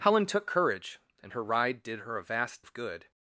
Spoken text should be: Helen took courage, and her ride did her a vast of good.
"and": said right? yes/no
yes